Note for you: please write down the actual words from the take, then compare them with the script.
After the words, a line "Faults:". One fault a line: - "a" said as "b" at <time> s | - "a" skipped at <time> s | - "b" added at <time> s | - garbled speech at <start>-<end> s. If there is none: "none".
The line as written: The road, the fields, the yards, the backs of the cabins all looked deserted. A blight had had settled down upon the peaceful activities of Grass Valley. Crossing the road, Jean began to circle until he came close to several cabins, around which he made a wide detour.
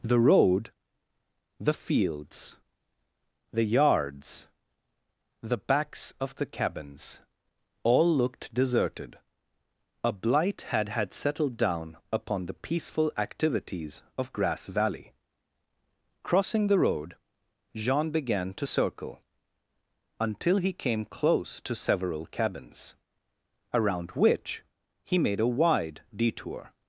The road, the fields, the yards, the backs of the cabins all looked deserted. A blight had had settled down upon the peaceful activities of Grass Valley. Crossing the road, Jean began to circle until he came close to several cabins, around which he made a wide detour.
Faults:
none